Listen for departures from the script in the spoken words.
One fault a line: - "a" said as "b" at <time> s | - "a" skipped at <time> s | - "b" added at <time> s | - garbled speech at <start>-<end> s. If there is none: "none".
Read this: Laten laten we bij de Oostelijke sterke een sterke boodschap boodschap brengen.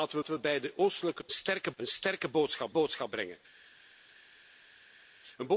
none